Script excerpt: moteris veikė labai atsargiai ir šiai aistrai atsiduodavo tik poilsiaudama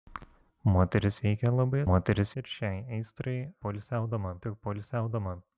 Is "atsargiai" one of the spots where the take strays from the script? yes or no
yes